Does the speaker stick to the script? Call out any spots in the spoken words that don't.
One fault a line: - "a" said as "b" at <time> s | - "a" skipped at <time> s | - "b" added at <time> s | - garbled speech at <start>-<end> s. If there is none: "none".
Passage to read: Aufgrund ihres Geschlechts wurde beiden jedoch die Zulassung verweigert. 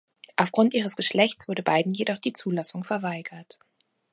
none